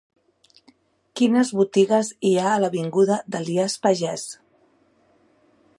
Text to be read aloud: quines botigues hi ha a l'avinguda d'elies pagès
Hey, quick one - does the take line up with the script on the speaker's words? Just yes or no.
yes